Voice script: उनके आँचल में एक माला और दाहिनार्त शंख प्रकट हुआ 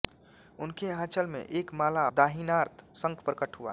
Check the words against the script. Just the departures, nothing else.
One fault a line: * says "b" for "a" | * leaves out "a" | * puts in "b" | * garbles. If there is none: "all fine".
* leaves out "और"